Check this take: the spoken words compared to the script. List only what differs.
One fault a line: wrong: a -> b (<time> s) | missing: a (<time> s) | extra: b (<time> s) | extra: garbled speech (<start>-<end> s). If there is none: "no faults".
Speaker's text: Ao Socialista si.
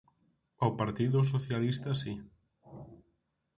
extra: Partido (0.8 s)